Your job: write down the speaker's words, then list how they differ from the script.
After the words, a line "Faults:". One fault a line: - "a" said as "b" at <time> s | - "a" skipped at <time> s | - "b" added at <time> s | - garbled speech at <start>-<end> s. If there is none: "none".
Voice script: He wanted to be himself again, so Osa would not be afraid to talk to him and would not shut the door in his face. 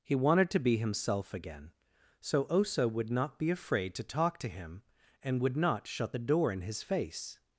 He wanted to be himself again, so Osa would not be afraid to talk to him and would not shut the door in his face.
Faults:
none